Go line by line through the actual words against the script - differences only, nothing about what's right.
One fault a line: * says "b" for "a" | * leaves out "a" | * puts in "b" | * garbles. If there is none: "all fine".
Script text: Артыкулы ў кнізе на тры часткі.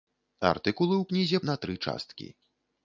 all fine